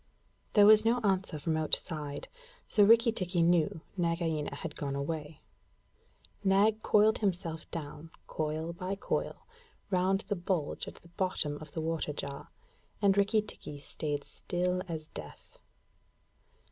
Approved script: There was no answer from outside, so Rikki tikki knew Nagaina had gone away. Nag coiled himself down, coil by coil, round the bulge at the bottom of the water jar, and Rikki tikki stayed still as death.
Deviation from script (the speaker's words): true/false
false